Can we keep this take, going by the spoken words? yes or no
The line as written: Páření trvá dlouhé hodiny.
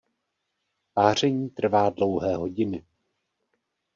yes